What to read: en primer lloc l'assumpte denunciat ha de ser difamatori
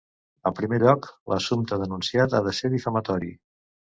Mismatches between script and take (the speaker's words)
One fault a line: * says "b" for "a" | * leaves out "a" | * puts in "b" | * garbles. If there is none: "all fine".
all fine